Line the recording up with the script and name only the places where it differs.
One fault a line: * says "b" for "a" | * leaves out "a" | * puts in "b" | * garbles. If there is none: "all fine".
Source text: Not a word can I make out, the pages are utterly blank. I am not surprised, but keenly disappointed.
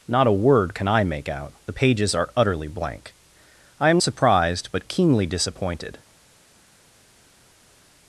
* leaves out "not"